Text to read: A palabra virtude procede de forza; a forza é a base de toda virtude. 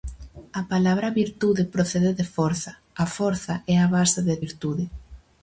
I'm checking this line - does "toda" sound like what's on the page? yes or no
no